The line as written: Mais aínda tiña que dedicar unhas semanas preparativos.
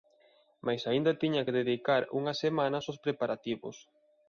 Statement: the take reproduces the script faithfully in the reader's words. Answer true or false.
false